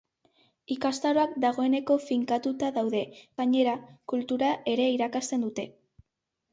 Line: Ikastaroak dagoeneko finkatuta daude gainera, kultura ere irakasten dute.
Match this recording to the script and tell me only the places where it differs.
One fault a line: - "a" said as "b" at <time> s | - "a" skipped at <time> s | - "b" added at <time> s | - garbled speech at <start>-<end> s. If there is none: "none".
none